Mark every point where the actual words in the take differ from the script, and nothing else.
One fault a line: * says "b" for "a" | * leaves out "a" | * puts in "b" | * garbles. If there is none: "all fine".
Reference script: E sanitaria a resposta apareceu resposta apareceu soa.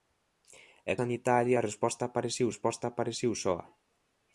all fine